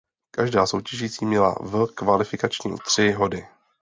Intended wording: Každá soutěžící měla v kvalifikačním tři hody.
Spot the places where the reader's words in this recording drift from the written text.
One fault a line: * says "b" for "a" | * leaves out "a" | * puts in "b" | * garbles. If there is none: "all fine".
all fine